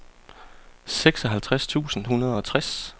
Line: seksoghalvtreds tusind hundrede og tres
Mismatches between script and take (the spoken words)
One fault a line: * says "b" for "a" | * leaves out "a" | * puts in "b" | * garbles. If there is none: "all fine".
all fine